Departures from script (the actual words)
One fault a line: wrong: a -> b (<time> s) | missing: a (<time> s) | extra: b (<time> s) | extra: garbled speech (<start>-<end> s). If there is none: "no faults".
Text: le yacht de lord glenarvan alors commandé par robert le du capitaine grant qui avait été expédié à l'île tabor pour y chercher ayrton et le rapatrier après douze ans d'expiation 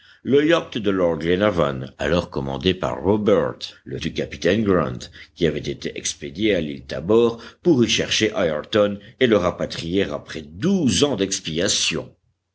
no faults